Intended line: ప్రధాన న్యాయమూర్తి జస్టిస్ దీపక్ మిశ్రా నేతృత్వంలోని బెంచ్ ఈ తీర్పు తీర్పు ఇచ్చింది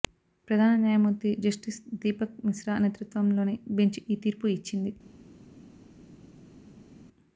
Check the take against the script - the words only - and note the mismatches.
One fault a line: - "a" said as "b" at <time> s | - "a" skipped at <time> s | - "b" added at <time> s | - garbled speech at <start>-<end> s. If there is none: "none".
- "తీర్పు" skipped at 4.5 s